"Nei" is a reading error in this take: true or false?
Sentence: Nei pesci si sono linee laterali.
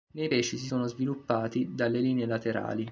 false